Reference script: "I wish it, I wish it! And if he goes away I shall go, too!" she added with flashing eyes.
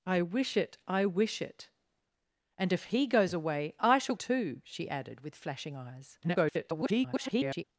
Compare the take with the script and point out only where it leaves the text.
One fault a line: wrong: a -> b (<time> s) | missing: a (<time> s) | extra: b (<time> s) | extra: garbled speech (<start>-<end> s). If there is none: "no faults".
missing: go (4.2 s)
extra: garbled speech (6.2-7.6 s)